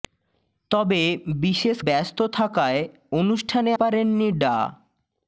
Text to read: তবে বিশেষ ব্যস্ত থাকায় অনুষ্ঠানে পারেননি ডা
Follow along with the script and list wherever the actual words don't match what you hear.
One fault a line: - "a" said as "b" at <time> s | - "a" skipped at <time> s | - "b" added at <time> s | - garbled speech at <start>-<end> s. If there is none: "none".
none